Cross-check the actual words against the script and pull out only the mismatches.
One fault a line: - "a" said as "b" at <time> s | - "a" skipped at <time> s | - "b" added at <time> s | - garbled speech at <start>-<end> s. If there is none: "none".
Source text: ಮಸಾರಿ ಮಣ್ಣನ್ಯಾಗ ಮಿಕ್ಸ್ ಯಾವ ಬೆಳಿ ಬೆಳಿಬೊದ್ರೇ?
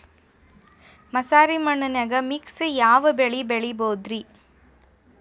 none